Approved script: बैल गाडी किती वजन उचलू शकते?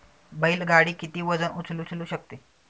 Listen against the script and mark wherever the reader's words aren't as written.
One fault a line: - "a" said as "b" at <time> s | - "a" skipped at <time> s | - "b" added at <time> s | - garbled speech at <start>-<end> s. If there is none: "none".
- "उचलू" added at 1.8 s